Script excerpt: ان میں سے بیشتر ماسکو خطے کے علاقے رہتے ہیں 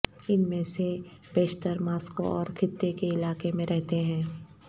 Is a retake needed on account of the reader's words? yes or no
yes